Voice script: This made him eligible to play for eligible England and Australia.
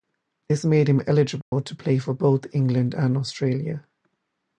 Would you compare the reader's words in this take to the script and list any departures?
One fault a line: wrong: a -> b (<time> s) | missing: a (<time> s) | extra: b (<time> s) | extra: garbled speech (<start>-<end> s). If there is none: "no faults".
wrong: eligible -> both (2.1 s)